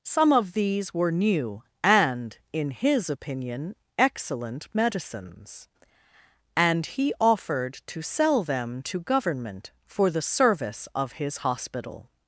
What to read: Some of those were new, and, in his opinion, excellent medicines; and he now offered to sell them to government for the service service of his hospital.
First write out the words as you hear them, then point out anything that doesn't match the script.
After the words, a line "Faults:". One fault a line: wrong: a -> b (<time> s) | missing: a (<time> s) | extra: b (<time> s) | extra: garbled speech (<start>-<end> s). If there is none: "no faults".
Some of these were new, and, in his opinion, excellent medicines; and he offered to sell them to government for the service of his hospital.
Faults:
wrong: those -> these (0.5 s)
missing: now (7.1 s)
missing: service (10.9 s)